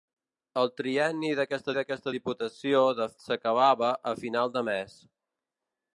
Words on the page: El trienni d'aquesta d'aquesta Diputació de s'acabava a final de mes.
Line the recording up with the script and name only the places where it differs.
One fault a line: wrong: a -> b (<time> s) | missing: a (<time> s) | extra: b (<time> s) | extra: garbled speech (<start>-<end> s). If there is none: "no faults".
no faults